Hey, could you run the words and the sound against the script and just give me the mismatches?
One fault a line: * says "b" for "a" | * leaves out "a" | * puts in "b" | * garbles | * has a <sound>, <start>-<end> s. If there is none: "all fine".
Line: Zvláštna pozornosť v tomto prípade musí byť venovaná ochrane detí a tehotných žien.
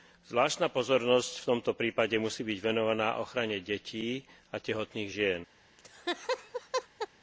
* has a laugh, 5.8-7.1 s